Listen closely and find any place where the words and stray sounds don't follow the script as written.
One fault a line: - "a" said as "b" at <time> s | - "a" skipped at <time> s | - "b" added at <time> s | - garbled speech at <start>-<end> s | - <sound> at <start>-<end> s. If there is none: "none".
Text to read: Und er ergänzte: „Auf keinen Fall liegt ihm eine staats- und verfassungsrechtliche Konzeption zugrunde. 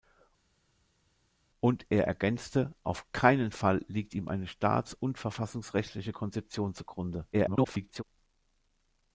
- garbled speech at 7.3-8.0 s